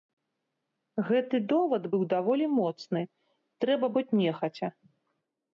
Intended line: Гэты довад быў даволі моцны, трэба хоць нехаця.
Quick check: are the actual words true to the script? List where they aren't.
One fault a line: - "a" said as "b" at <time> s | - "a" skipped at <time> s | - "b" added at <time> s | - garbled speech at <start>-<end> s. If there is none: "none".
none